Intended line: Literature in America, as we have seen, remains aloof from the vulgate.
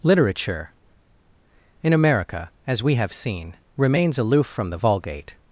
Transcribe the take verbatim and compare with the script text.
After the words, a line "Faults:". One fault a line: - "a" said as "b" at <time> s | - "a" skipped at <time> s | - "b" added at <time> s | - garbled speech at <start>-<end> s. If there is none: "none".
Literature in America, as we have seen, remains aloof from the vulgate.
Faults:
none